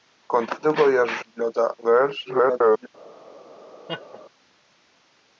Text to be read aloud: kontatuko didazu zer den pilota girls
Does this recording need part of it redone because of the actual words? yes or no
yes